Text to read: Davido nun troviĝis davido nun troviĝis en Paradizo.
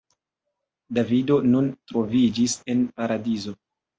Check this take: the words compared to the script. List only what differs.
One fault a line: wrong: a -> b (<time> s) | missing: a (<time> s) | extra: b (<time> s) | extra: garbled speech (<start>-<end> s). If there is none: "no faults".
missing: davido nun troviĝis (2.6 s)